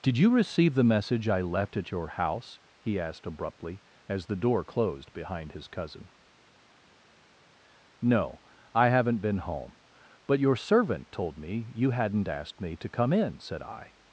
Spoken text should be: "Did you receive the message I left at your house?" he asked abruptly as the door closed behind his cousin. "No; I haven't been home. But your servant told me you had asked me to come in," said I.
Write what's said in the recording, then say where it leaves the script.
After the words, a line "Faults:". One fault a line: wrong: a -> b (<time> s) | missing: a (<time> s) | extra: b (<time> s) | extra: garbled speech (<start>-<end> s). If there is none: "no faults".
"Did you receive the message I left at your house?" he asked abruptly as the door closed behind his cousin. "No; I haven't been home. But your servant told me you hadn't asked me to come in," said I.
Faults:
wrong: had -> hadn't (11.9 s)